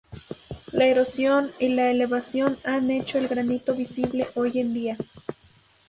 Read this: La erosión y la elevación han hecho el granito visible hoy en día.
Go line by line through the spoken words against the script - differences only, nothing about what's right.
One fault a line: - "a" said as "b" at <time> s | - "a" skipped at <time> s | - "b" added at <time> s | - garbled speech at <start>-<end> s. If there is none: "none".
none